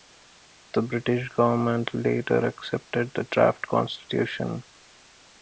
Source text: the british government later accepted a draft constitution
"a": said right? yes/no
no